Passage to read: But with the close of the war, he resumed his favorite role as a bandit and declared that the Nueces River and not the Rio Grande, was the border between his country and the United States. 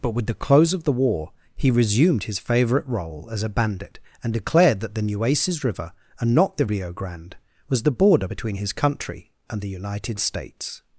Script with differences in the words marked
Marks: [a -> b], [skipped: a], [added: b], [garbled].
But with the close of the war, he resumed his favorite role as a bandit and declared that the Nueces River and not the Rio Grande, was the border between his country and the United States.